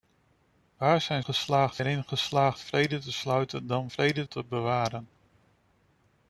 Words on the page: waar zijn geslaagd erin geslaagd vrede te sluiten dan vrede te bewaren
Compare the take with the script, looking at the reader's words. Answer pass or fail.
pass